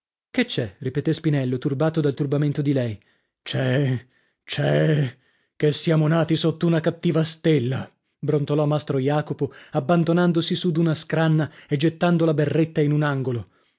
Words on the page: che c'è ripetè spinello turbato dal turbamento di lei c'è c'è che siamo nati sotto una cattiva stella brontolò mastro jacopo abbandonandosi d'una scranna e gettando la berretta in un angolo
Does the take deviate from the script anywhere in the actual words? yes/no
yes